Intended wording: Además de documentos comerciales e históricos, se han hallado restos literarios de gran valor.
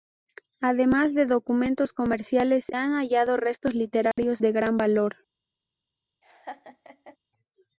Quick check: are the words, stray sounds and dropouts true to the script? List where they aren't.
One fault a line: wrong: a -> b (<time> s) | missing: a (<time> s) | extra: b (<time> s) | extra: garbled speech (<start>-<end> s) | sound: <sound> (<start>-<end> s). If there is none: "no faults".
missing: e históricos se (2.7 s)
sound: dropout (4.1-4.2 s)
sound: laugh (6.2-7.2 s)